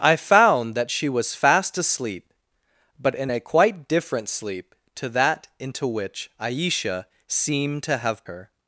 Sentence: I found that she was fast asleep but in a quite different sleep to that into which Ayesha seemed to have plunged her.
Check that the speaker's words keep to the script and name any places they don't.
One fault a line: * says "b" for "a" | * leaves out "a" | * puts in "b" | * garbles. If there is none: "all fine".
* leaves out "plunged"